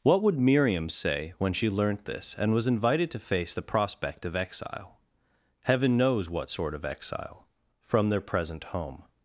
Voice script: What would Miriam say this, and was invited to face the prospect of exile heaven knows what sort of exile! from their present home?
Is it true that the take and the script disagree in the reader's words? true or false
true